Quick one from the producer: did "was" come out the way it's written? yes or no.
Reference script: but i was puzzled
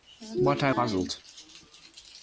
no